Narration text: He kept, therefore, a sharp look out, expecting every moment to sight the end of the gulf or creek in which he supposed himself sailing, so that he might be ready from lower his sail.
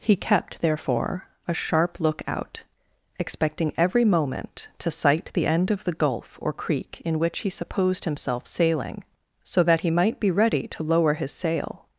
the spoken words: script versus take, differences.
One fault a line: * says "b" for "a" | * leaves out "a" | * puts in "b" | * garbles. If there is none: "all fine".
* says "to" for "from"